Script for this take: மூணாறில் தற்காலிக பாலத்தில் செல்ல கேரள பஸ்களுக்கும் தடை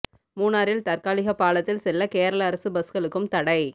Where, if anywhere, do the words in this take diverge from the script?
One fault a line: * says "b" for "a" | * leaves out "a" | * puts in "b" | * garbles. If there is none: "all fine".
* puts in "அரசு"